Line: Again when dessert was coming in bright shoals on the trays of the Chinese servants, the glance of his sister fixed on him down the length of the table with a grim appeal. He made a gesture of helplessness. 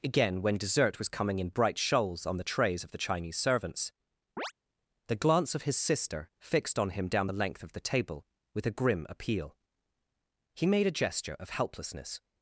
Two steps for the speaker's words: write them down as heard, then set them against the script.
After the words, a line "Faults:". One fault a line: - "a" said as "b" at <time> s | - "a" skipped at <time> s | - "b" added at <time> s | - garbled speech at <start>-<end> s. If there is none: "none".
Again when dessert was coming in bright shoals on the trays of the Chinese servants, the glance of his sister fixed on him down the length of the table with a grim appeal. He made a gesture of helplessness.
Faults:
none